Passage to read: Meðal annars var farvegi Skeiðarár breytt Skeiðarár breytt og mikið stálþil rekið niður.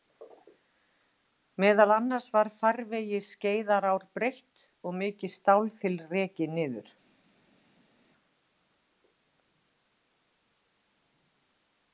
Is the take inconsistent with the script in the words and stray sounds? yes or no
yes